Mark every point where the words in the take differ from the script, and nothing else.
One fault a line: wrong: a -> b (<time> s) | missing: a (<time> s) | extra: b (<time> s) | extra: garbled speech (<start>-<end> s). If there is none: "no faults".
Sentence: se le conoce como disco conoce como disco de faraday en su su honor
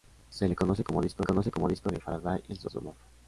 no faults